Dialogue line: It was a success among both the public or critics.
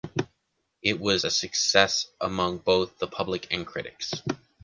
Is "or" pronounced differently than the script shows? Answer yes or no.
yes